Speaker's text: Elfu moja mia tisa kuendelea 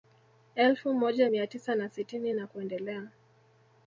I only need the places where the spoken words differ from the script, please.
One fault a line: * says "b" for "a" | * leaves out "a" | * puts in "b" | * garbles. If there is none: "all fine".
* puts in "na sitini na"